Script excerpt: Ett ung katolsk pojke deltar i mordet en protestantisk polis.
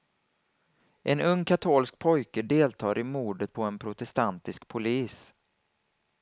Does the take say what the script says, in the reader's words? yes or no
no